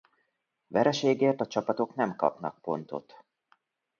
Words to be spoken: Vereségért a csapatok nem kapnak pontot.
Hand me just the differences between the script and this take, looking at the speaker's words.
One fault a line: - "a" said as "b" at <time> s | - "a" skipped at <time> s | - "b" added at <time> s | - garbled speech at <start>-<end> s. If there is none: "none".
none